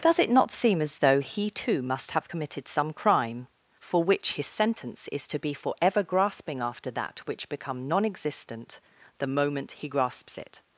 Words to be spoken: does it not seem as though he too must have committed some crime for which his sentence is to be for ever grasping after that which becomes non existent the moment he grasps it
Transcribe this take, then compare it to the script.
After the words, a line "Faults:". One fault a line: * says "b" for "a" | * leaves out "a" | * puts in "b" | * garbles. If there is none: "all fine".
does it not seem as though he too must have committed some crime for which his sentence is to be for ever grasping after that which become non existent the moment he grasps it
Faults:
* says "become" for "becomes"